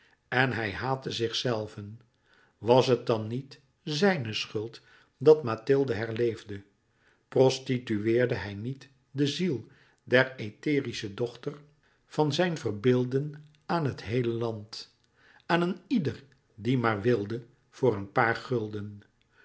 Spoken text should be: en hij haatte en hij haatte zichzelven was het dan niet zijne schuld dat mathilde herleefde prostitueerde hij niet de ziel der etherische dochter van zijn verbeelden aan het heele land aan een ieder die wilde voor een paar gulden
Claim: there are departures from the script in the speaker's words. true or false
true